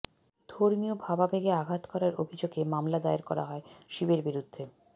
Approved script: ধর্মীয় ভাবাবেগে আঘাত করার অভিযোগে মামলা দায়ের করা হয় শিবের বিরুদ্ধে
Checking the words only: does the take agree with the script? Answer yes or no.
yes